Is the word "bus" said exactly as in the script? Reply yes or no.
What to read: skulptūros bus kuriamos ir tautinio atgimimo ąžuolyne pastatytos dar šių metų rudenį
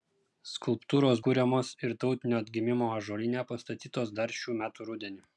no